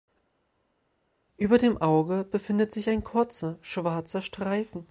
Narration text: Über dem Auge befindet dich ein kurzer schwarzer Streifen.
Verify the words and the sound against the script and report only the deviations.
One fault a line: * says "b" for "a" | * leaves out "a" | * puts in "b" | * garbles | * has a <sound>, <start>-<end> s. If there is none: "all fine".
* says "sich" for "dich"